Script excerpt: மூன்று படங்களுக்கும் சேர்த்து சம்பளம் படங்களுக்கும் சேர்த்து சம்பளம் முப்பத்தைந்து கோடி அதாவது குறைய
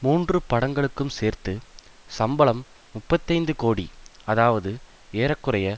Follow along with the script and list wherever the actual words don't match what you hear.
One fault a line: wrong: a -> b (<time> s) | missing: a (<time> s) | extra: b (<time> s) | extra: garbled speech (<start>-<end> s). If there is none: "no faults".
missing: படங்களுக்கும் சேர்த்து சம்பளம் (2.6 s)
extra: ஏற (5.1 s)